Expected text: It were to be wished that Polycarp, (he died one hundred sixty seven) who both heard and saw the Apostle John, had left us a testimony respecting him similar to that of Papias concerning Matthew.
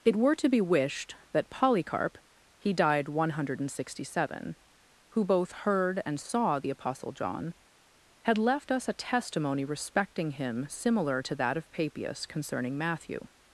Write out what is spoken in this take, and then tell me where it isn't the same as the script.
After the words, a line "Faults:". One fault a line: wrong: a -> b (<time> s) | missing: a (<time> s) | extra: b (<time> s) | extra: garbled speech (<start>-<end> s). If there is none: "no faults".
It were to be wished that Polycarp, (he died one hundred sixty seven) who both heard and saw the Apostle John, had left us a testimony respecting him similar to that of Papias concerning Matthew.
Faults:
no faults